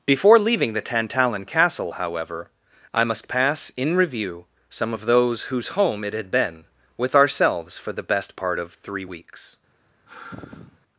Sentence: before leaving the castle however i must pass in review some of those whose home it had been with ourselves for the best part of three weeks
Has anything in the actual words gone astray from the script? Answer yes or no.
yes